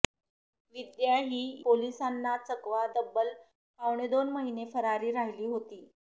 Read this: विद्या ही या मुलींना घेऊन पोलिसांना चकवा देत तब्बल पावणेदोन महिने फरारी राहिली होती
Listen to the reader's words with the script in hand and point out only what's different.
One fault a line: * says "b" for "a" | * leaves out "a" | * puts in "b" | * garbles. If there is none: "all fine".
* leaves out "या मुलींना घेऊन"
* leaves out "देत"